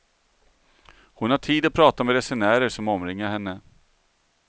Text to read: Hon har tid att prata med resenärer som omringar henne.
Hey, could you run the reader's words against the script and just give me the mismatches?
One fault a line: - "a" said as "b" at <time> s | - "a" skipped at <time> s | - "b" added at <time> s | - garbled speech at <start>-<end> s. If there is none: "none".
none